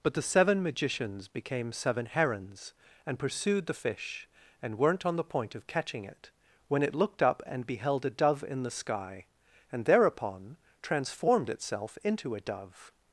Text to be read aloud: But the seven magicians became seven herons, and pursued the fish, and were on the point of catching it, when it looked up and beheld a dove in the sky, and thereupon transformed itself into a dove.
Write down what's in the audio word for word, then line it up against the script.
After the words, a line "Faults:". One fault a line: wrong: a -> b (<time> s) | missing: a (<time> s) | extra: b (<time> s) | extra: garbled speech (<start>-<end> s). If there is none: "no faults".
But the seven magicians became seven herons, and pursued the fish, and weren't on the point of catching it, when it looked up and beheld a dove in the sky, and thereupon transformed itself into a dove.
Faults:
wrong: were -> weren't (4.8 s)